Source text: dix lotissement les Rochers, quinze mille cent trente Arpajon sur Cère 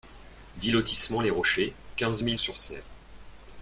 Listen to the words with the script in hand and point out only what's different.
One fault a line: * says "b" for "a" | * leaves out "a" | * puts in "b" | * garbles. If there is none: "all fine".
* leaves out "cent trente Arpajon"